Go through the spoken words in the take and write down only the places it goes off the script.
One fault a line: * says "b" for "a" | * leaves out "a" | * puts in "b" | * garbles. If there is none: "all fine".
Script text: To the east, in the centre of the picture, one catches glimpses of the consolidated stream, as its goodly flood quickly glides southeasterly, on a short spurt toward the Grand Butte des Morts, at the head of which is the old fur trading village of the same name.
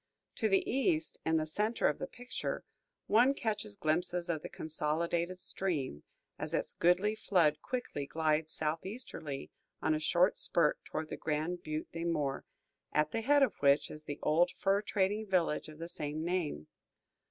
all fine